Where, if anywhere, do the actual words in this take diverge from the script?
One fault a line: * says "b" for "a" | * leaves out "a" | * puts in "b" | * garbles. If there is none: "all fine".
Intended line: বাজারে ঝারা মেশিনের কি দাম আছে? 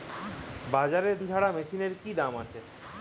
all fine